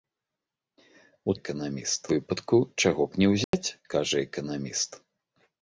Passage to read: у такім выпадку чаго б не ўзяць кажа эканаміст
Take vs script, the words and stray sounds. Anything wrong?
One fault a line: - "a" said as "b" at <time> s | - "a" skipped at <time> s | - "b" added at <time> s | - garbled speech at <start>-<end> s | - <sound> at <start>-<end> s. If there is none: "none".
- "такім" said as "эканаміст" at 1.4 s
- dropout at 3.4-3.5 s